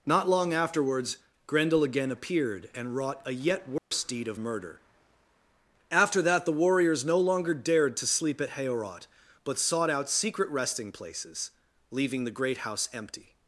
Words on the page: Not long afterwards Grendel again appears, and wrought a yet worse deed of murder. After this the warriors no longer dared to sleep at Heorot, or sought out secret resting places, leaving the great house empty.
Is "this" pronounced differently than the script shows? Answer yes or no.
yes